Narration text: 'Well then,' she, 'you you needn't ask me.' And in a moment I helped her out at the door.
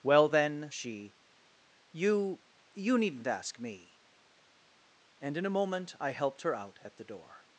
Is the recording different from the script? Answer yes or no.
no